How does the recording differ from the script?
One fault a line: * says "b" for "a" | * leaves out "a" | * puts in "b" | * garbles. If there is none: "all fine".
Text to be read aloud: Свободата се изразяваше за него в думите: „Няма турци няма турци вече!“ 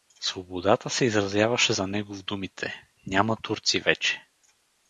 * leaves out "няма турци"